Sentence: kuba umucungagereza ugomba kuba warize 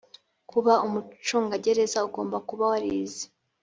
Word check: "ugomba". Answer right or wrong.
right